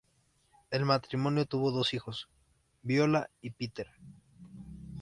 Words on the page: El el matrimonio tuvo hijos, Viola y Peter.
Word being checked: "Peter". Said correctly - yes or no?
yes